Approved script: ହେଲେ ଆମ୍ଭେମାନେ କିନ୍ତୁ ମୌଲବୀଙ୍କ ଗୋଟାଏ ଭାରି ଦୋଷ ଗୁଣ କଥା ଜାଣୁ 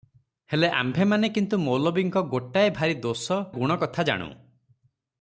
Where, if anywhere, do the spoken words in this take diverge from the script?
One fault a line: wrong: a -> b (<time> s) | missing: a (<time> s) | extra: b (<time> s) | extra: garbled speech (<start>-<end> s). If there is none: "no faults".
no faults